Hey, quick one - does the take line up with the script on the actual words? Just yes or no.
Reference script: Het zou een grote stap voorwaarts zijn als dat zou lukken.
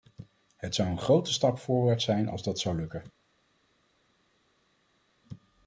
yes